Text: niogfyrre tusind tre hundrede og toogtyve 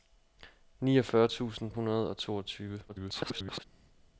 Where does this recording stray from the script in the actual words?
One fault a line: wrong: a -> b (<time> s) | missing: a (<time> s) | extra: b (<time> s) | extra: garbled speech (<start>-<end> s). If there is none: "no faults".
missing: tre (1.7 s)
extra: garbled speech (2.9-3.6 s)